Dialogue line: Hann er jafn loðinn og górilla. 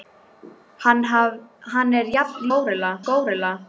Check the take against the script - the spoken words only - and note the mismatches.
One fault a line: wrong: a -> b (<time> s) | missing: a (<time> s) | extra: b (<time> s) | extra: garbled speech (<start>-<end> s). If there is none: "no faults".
wrong: loðinn -> górilla (2.5 s)